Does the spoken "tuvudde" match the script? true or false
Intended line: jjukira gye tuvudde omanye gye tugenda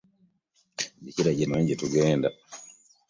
false